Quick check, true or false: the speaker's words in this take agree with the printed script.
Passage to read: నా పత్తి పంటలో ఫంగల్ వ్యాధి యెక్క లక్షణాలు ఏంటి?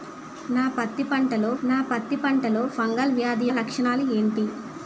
false